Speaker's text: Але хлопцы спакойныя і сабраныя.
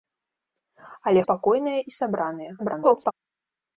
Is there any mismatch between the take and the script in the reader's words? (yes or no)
yes